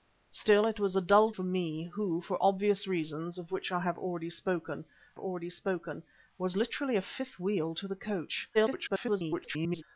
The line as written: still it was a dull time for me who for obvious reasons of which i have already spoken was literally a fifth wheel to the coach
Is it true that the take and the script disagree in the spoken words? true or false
true